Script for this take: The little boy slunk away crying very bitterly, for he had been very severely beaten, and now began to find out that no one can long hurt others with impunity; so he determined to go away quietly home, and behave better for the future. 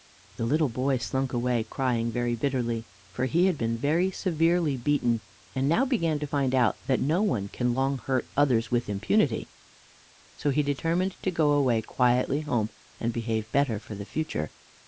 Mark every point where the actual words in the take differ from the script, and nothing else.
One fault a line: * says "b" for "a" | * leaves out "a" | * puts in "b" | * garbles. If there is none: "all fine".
all fine